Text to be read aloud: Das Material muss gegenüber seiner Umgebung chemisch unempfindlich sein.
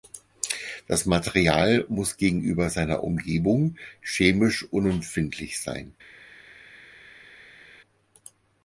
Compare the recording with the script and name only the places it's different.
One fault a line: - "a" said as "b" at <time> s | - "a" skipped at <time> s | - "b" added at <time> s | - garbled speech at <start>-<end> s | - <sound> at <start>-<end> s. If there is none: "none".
none